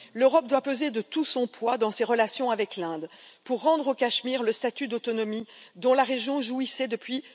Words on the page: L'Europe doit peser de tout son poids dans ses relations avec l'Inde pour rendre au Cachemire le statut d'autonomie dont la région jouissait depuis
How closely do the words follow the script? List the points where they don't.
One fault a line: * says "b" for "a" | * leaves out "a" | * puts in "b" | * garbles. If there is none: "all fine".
all fine